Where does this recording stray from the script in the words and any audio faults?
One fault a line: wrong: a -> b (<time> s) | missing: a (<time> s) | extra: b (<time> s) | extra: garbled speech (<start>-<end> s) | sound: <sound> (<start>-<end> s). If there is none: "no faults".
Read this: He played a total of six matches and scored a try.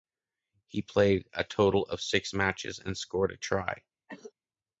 sound: cough (4.1-4.3 s)